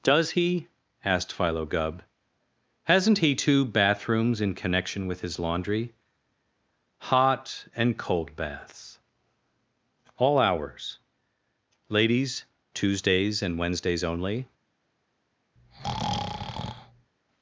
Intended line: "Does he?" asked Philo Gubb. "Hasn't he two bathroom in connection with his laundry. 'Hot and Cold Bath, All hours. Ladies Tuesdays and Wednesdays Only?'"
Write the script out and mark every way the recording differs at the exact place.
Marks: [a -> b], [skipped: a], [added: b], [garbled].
"Does he?" asked Philo Gubb. "Hasn't he two [bathroom -> bathrooms] in connection with his laundry. 'Hot and Cold [Bath, -> Baths] All hours. Ladies Tuesdays and Wednesdays Only?'"